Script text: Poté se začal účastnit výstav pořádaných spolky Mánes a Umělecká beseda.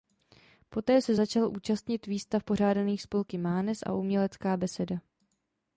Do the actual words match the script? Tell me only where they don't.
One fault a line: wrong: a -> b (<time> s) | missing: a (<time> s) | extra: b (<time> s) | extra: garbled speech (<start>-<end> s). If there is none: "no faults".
no faults